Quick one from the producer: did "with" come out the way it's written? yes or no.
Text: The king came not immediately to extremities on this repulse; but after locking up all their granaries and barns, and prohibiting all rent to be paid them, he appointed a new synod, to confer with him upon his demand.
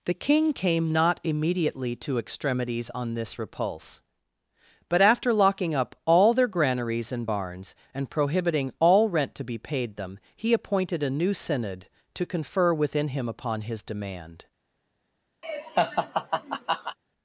no